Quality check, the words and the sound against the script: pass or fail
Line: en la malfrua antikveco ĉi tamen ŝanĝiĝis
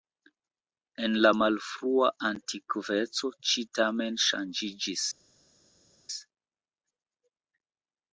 pass